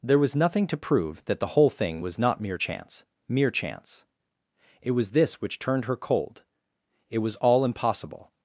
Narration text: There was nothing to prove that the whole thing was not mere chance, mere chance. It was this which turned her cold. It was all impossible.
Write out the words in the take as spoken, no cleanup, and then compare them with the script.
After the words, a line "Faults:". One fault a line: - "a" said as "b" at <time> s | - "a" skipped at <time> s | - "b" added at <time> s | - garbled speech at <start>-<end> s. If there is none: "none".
There was nothing to prove that the whole thing was not mere chance, mere chance. It was this which turned her cold. It was all impossible.
Faults:
none